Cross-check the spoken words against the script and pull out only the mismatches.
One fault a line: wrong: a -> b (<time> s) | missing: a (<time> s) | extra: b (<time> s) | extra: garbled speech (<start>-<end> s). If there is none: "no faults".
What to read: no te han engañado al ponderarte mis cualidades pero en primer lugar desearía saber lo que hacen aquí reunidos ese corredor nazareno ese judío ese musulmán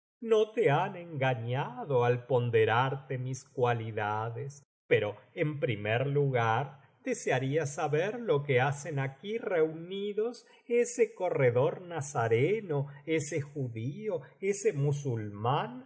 no faults